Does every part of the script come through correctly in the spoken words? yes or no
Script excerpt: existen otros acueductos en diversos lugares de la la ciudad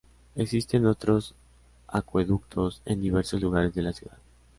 no